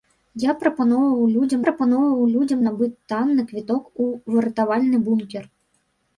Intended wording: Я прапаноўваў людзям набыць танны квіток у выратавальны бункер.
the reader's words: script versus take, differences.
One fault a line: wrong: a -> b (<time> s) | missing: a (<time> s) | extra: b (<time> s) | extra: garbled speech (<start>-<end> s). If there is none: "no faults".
extra: прапаноўваў людзям (1.6 s)